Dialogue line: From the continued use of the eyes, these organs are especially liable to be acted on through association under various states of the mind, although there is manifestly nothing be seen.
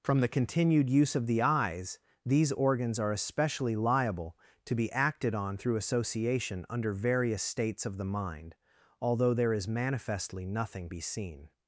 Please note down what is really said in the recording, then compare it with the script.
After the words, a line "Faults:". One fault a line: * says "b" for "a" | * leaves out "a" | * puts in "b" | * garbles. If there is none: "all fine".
From the continued use of the eyes, these organs are especially liable to be acted on through association under various states of the mind, although there is manifestly nothing be seen.
Faults:
all fine